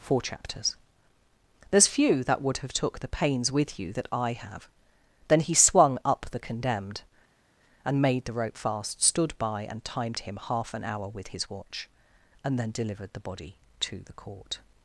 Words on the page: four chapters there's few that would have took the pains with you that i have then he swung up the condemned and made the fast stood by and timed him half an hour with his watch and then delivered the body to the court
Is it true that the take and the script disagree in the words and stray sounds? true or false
true